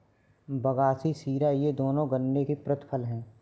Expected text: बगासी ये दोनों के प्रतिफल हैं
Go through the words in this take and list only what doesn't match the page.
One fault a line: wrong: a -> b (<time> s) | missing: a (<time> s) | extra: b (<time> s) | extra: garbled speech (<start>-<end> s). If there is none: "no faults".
extra: शीरा (1.1 s)
extra: गन्ने (2.1 s)